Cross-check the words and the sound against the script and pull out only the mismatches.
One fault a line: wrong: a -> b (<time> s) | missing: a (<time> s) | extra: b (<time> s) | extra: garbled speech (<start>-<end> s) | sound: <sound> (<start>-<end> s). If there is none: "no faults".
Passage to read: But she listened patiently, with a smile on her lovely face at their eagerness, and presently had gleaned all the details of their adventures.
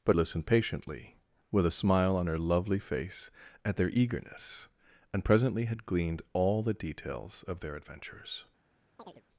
missing: she (0.2 s)
sound: chirp (9.0-9.2 s)